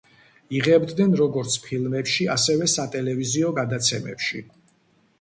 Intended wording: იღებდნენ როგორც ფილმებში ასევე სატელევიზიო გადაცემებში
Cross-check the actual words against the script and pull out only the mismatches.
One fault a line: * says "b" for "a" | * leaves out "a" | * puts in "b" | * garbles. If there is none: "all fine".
all fine